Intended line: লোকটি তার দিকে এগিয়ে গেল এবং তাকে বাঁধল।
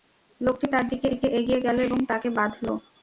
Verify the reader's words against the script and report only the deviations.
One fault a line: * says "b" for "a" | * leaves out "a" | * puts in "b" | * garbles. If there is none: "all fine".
* puts in "দিকে"